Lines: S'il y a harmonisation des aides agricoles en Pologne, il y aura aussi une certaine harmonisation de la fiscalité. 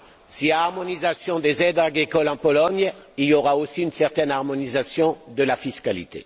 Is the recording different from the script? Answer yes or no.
no